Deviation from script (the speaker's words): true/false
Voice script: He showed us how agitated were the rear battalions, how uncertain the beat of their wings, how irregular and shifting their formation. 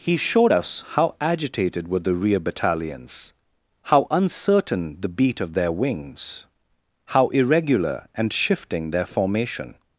false